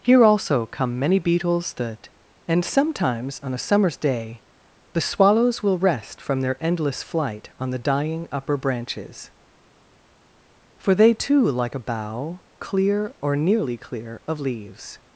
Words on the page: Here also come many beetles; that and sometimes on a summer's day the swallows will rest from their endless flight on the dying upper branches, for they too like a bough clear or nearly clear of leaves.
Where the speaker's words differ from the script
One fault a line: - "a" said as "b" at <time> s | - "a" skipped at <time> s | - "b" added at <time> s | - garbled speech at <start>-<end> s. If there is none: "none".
none